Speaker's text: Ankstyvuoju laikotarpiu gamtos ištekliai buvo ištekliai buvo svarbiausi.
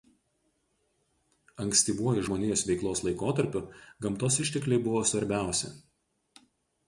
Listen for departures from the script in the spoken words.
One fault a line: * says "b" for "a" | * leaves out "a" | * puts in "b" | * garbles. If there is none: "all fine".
* puts in "žmonijos veiklos"
* leaves out "ištekliai buvo"